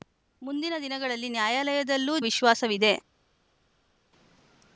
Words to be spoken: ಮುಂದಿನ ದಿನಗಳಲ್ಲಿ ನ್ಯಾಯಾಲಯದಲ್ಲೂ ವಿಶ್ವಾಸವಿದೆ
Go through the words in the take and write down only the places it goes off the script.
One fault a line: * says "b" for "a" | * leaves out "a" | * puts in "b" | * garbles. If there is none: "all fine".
all fine